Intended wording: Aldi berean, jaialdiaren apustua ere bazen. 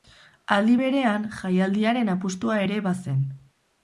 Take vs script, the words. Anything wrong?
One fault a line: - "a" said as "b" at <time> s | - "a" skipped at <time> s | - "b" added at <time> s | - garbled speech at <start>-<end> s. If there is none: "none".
none